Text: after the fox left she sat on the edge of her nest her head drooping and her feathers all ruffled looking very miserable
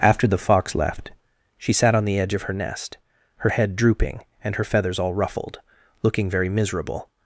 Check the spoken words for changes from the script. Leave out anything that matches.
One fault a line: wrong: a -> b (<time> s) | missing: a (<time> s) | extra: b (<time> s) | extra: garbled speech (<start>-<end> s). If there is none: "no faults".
no faults